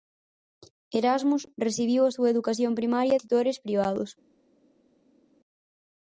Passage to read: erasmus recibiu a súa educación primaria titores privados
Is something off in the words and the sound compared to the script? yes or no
no